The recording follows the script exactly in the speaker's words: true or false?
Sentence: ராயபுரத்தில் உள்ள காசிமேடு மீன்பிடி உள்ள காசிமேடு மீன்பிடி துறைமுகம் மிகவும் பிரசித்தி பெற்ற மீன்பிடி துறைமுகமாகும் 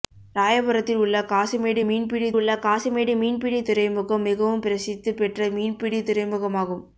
true